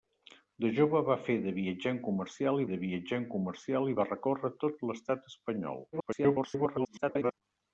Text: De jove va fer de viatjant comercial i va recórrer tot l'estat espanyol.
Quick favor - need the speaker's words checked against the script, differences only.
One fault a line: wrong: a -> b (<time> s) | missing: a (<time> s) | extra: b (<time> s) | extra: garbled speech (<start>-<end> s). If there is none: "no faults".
extra: de viatjant comercial (2.7 s)
extra: garbled speech (5.9-7.3 s)